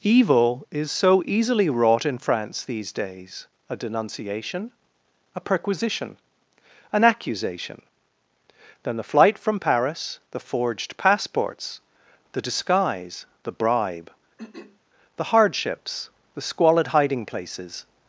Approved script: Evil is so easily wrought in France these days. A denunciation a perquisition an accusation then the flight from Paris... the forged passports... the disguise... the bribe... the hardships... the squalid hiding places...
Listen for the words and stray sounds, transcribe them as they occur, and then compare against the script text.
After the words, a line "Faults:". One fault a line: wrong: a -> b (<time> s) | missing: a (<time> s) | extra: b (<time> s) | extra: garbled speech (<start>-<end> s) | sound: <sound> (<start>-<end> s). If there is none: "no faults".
Evil is so easily wrought in France these days. A denunciation a perquisition an accusation then the flight from Paris... the forged passports... the disguise... the bribe... the hardships... the squalid hiding places...
Faults:
sound: throat clearing (14.4-14.8 s)